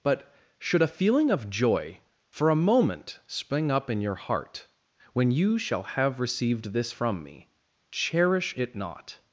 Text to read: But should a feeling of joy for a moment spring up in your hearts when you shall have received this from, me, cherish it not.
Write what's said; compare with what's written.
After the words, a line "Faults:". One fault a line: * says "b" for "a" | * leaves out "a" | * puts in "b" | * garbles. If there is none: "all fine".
But should a feeling of joy for a moment spring up in your heart when you shall have received this from, me, cherish it not.
Faults:
* says "heart" for "hearts"